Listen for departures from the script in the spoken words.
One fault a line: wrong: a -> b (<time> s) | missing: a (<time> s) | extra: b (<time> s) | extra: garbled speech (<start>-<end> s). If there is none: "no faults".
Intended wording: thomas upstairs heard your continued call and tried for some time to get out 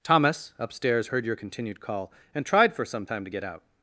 no faults